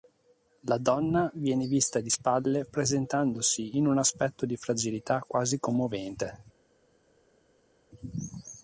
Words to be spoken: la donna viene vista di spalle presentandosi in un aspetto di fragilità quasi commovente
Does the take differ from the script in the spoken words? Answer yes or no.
no